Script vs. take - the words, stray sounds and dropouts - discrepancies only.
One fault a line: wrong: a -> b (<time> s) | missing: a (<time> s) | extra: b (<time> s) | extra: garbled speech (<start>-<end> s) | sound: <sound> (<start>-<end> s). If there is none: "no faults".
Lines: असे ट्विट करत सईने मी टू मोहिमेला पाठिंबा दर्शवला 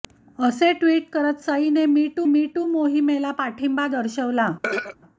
extra: मी टू (2.3 s)
sound: throat clearing (4.6-5.0 s)